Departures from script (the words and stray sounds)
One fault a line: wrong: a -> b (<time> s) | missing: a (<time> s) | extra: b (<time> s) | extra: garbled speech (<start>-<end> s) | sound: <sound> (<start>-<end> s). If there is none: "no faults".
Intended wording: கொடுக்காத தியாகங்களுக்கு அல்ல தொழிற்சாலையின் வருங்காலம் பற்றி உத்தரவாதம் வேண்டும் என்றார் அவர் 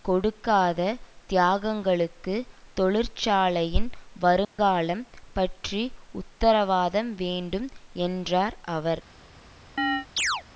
missing: அல்ல (2.4 s)
sound: dropout (4.4-4.6 s)
sound: chirp (9.8-10.4 s)